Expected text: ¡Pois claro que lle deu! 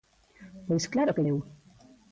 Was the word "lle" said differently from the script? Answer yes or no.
yes